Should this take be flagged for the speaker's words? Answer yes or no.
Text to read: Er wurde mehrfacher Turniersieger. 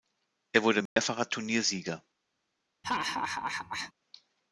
no